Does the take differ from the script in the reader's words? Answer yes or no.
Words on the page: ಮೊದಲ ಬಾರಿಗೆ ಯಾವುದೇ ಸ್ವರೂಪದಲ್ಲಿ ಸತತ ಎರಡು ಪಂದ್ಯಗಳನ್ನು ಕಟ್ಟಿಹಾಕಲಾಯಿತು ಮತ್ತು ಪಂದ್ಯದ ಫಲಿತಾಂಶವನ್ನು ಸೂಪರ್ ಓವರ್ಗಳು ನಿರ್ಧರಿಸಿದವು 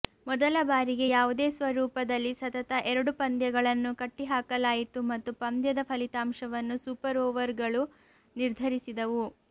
no